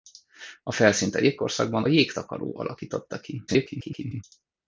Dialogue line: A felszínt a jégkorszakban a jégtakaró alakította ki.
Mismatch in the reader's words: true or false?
true